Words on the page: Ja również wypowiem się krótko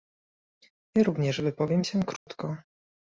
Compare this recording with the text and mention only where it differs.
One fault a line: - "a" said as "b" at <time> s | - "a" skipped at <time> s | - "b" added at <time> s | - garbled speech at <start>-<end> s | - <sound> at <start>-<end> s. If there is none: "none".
- dropout at 2.2-2.3 s